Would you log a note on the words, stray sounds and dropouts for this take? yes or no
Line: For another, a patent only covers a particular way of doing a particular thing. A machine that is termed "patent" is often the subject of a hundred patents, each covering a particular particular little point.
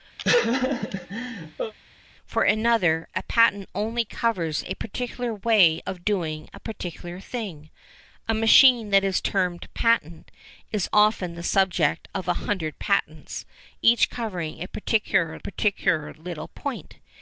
yes